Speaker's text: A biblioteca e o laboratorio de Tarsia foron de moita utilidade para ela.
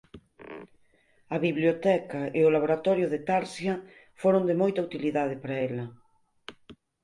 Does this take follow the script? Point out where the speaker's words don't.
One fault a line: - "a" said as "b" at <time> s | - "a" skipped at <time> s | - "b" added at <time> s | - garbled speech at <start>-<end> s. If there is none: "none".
none